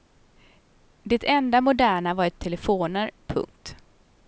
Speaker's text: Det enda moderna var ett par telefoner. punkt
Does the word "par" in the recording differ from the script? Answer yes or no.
yes